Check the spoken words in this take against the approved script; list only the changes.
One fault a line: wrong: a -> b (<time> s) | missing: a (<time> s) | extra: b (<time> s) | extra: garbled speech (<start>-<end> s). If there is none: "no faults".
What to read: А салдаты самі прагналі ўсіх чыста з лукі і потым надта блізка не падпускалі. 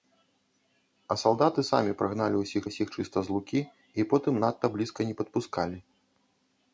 extra: ўсіх (2.6 s)